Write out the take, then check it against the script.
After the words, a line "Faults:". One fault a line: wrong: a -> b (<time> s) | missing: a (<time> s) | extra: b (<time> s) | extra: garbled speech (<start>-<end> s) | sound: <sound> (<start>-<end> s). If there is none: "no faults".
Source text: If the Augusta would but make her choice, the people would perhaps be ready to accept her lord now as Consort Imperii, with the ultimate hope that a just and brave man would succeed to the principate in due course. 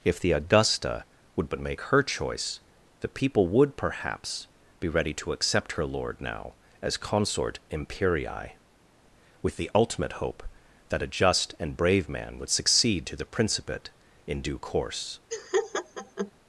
If the Augusta would but make her choice, the people would perhaps be ready to accept her lord now as Consort Imperii, with the ultimate hope that a just and brave man would succeed to the principate in due course.
Faults:
sound: laugh (15.3-16.3 s)